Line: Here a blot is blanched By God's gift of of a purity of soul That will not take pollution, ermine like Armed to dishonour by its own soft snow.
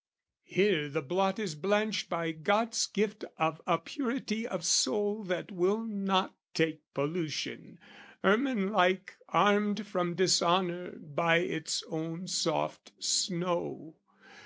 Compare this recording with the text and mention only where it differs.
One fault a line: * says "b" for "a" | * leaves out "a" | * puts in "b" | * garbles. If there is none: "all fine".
* says "the" for "a"
* leaves out "of"
* says "from" for "to"